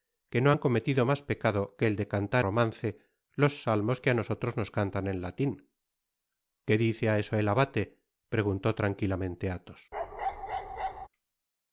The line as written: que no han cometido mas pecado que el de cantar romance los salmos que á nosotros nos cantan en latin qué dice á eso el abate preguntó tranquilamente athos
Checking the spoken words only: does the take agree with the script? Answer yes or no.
yes